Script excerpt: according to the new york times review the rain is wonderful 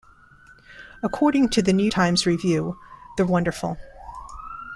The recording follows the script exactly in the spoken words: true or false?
false